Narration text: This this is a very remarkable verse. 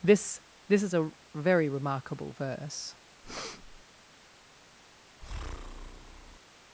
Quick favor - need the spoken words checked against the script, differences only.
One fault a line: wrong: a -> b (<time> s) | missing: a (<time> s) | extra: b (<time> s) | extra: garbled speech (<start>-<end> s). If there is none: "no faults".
no faults